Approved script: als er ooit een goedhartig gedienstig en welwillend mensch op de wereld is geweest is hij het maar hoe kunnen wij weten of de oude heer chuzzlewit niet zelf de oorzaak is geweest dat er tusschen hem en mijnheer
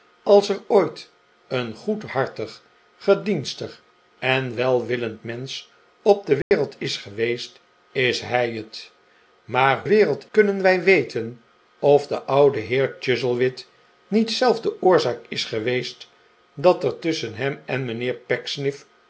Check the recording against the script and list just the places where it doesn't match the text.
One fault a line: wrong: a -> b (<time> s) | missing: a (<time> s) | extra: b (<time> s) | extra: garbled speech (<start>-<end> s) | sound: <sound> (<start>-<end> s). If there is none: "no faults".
sound: dropout (6.4-6.5 s)
wrong: hoe -> wereld (9.9 s)